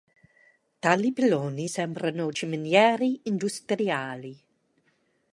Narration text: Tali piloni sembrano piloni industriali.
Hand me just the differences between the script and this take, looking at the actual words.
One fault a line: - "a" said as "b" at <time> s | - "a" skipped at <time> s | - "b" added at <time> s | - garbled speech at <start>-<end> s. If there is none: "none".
- "piloni" said as "ciminiere" at 2.3 s